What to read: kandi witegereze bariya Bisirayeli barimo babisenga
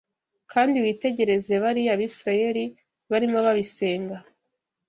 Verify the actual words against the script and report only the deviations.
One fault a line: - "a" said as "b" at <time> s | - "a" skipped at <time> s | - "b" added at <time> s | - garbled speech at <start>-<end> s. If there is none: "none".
none